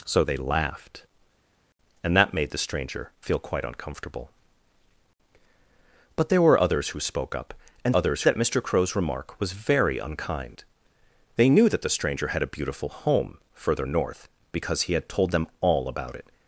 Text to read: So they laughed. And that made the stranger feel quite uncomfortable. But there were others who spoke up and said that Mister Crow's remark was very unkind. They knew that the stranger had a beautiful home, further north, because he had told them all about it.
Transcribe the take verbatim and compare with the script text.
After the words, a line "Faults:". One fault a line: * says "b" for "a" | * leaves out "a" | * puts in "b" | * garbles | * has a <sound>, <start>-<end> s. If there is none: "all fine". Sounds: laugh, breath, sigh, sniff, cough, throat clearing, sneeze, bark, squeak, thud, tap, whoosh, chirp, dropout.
So they laughed. And that made the stranger feel quite uncomfortable. But there were others who spoke up and others that Mister Crow's remark was very unkind. They knew that the stranger had a beautiful home, further north, because he had told them all about it.
Faults:
* says "others" for "said"